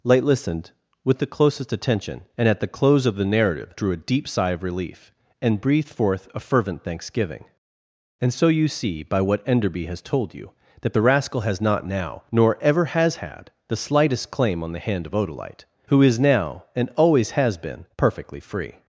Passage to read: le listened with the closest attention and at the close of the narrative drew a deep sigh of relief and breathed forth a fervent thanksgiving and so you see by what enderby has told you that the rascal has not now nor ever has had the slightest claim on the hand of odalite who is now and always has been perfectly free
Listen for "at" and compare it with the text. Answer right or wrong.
right